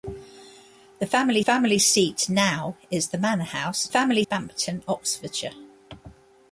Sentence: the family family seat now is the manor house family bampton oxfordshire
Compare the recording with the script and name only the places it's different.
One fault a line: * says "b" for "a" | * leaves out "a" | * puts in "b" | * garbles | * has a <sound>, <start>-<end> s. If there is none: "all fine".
all fine